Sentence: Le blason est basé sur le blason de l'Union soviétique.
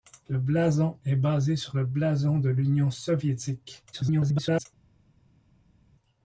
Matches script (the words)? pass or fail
fail